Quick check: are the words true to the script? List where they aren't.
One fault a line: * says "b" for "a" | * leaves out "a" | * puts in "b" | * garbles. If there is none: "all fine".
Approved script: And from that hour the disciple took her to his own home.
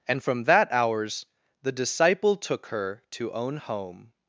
* says "hours" for "hour"
* leaves out "his"